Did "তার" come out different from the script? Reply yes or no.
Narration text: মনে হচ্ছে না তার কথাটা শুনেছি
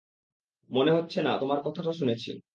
yes